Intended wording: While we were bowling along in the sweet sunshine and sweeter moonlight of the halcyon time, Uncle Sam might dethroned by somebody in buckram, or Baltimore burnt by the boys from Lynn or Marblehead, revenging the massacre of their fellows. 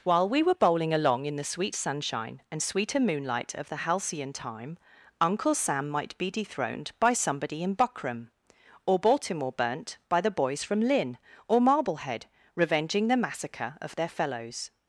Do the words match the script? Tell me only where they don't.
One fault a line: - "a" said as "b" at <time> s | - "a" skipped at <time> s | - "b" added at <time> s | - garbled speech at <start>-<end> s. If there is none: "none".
- "be" added at 6.2 s